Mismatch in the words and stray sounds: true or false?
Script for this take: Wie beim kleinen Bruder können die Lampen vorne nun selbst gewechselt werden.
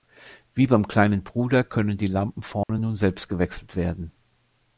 true